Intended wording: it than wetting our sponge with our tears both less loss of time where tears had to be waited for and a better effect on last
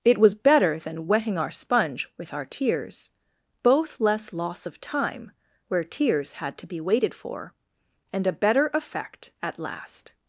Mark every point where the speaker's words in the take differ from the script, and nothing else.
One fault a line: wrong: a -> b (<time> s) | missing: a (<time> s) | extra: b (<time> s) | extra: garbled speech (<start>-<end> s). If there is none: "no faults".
extra: was better (0.2 s)
wrong: on -> at (9.4 s)